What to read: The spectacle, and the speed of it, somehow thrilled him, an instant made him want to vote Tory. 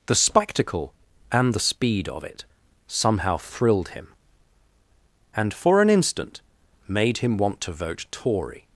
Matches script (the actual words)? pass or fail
fail